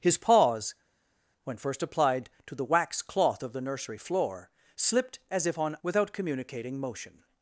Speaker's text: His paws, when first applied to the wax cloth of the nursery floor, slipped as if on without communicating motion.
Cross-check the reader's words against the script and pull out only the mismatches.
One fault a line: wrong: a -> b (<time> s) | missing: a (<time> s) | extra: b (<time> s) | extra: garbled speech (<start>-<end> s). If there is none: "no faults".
no faults